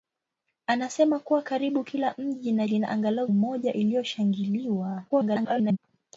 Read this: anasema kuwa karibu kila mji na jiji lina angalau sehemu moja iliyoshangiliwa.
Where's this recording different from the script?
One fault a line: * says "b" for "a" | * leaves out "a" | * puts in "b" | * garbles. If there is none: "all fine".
* leaves out "jiji"
* leaves out "sehemu"
* garbles